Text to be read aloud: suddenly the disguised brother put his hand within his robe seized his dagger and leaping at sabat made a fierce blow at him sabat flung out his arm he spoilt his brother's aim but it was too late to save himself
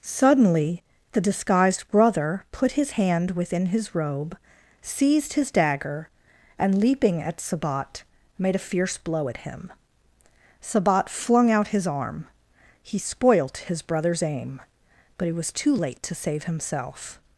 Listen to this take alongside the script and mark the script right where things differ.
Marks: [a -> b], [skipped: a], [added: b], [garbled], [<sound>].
suddenly the disguised brother put his hand within his robe seized his dagger and leaping at sabat made a fierce blow at him sabat flung out his arm he spoilt his brother's aim but it was too late to save himself